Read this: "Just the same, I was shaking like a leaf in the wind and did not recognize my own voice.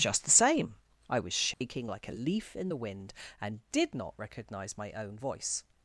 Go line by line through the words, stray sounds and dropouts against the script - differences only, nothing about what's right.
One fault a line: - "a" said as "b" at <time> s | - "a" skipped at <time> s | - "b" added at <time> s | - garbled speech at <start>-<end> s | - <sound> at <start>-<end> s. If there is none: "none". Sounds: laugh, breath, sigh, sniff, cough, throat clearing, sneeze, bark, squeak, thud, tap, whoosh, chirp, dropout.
- dropout at 1.5-1.6 s